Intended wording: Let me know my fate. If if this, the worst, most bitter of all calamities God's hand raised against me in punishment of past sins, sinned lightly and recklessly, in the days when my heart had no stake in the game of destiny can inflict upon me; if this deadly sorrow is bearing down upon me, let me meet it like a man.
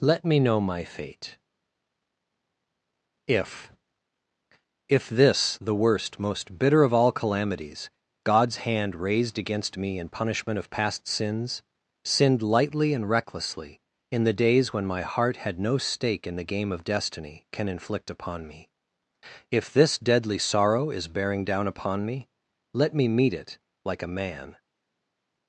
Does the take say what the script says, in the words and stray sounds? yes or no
yes